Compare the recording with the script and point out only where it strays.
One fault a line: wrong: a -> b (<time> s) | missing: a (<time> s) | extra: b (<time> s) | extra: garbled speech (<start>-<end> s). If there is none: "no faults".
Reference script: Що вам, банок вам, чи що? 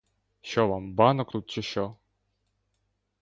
wrong: вам -> тут (1.3 s)